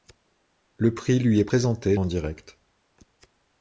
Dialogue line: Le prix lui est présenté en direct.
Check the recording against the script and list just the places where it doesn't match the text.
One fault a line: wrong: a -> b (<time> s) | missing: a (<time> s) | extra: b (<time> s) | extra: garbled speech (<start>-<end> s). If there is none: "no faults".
no faults